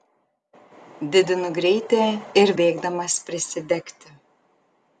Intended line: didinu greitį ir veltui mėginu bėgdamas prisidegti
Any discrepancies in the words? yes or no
yes